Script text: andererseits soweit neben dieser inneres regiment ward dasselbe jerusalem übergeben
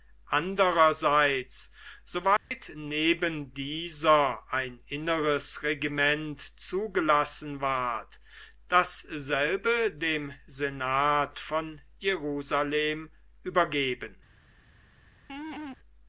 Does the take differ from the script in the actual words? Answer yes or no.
yes